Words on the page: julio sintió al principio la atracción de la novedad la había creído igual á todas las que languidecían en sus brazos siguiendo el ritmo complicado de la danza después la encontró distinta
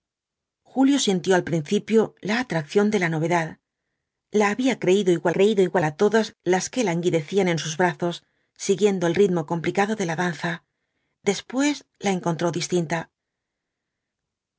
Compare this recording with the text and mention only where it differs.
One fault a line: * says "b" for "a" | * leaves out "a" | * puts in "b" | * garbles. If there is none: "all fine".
* puts in "creído igual"